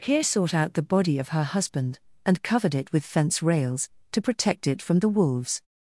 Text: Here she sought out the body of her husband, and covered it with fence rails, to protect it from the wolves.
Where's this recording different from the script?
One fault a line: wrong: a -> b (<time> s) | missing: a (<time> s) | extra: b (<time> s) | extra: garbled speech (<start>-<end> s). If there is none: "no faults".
missing: she (0.2 s)